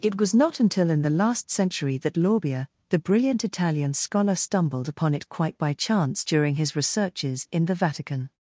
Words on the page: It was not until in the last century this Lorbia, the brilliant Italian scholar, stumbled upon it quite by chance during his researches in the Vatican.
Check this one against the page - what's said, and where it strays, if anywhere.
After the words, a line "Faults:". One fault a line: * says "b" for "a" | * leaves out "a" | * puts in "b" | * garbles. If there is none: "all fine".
It was not until in the last century that Lorbia, the brilliant Italian scholar, stumbled upon it quite by chance during his researches in the Vatican.
Faults:
* says "that" for "this"